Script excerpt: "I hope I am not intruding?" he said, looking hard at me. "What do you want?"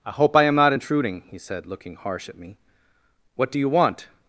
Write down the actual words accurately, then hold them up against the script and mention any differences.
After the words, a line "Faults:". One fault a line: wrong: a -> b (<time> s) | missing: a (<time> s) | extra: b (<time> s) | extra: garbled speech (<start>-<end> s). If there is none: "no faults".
"I hope I am not intruding?" he said, looking harsh at me. "What do you want?"
Faults:
wrong: hard -> harsh (2.0 s)